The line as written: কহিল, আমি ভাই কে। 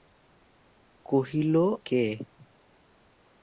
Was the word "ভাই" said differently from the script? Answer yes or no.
yes